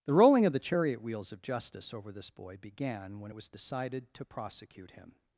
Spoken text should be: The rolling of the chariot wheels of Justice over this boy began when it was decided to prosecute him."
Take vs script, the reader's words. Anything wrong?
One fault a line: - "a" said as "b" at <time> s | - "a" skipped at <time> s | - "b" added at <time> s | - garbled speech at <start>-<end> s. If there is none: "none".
none